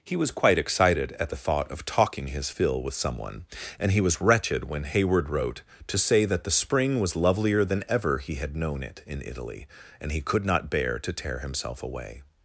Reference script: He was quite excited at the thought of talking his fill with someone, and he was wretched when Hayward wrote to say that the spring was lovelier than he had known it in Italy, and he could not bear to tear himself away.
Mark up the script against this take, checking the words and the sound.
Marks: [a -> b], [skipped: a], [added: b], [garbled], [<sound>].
He was quite excited at the thought of talking his fill with someone, and he was wretched when Hayward wrote to say that the spring was lovelier than [added: ever] he had known it in Italy, and he could not bear to tear himself away.